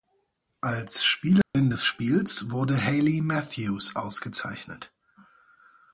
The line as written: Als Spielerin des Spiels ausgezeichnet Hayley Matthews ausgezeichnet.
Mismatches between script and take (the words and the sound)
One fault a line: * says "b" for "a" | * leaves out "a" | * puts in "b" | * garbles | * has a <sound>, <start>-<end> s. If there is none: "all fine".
* has a dropout, 1.4-1.5 s
* says "wurde" for "ausgezeichnet"